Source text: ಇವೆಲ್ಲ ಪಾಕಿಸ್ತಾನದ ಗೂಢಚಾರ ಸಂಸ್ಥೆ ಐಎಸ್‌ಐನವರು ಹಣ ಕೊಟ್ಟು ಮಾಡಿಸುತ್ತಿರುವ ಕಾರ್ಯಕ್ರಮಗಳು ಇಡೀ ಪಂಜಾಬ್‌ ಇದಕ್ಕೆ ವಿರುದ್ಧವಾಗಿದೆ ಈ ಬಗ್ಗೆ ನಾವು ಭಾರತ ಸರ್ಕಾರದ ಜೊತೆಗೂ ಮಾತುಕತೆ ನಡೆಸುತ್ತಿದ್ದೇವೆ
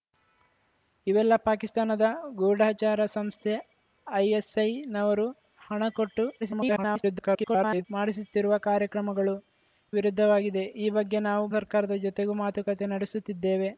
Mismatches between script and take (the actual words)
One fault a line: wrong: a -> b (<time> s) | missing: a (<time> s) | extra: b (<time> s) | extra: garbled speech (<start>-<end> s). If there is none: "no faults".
extra: garbled speech (6.4-7.9 s)
missing: ಇಡೀ ಪಂಜಾಬ್ ಇದಕ್ಕೆ (9.3 s)
missing: ಭಾರತ (11.5 s)